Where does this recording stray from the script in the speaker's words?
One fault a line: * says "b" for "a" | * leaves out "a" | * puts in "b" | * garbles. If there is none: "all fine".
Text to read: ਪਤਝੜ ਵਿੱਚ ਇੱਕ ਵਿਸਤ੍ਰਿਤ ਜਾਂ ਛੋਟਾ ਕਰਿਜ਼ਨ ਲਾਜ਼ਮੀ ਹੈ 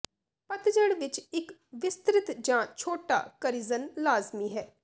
all fine